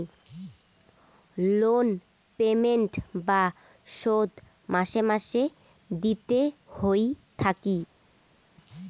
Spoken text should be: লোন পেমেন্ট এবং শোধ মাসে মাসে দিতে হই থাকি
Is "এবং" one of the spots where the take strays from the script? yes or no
yes